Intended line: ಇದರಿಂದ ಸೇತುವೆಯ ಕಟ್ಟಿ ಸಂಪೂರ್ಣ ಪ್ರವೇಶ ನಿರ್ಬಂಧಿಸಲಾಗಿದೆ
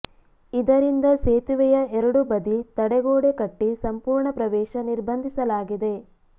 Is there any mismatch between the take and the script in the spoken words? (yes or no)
yes